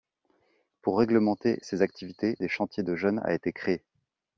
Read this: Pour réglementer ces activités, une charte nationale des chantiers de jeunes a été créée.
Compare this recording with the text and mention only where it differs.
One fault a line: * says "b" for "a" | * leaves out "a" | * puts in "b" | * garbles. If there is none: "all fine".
* leaves out "une charte nationale"